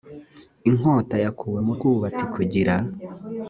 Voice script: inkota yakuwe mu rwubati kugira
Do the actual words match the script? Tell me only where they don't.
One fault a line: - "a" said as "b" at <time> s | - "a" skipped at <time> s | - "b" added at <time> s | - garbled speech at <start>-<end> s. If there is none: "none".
none